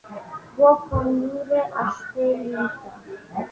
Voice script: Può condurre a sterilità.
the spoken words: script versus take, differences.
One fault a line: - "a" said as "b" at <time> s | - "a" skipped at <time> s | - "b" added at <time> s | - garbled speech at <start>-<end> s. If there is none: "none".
none